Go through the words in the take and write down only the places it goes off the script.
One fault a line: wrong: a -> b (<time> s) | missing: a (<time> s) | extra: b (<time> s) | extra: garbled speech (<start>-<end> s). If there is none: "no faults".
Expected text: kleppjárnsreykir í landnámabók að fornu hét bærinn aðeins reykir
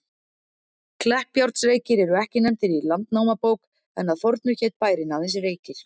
extra: eru ekki nefndir (2.1 s)
extra: en (4.0 s)